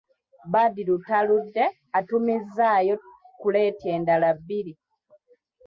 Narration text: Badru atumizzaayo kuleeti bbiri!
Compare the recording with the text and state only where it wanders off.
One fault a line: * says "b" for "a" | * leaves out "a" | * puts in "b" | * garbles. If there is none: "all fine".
* puts in "taludde"
* puts in "endala"